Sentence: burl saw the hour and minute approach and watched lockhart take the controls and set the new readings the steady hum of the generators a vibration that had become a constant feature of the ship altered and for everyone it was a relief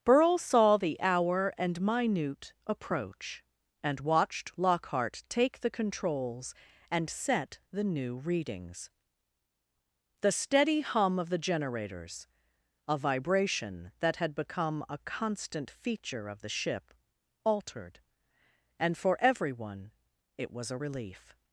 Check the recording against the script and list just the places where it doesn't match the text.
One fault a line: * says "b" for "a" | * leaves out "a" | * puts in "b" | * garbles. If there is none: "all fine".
all fine